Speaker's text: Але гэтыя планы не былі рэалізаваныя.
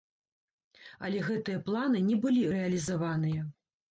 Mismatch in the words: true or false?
false